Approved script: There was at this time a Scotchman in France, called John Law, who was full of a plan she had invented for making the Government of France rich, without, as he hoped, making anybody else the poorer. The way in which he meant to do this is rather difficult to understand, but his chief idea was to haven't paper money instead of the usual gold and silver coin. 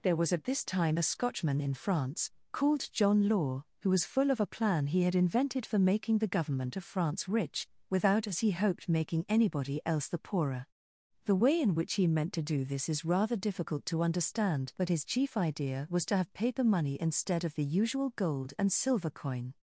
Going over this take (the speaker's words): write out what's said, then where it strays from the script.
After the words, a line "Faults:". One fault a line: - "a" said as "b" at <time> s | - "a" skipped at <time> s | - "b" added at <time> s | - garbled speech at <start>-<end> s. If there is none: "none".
There was at this time a Scotchman in France, called John Law, who was full of a plan he had invented for making the Government of France rich, without, as he hoped, making anybody else the poorer. The way in which he meant to do this is rather difficult to understand, but his chief idea was to have paper money instead of the usual gold and silver coin.
Faults:
- "she" said as "he" at 4.9 s
- "haven't" said as "have" at 16.2 s